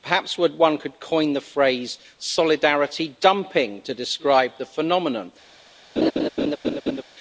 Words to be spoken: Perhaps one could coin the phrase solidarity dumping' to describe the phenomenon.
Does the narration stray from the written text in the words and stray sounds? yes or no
yes